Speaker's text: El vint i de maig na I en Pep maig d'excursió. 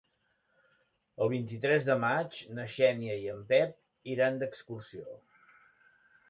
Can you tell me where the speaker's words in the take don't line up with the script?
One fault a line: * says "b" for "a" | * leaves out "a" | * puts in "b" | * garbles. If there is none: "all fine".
* puts in "tres"
* puts in "Xènia"
* says "iran" for "maig"